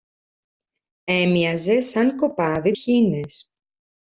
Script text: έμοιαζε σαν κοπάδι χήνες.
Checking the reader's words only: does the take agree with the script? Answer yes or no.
yes